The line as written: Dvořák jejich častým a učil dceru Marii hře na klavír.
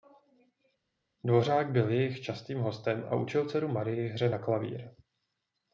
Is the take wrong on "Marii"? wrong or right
right